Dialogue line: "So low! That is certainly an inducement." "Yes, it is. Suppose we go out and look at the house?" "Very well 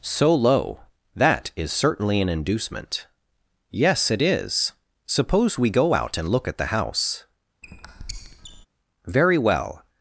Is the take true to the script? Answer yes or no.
yes